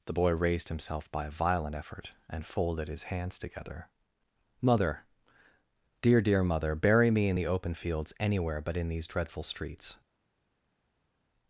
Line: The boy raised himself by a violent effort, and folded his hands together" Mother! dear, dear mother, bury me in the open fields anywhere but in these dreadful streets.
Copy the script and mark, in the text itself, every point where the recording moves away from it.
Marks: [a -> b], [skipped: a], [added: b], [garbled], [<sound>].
The boy raised himself by a violent effort, and folded his hands together" Mother! dear, dear mother, bury me in the open fields anywhere but in these dreadful streets.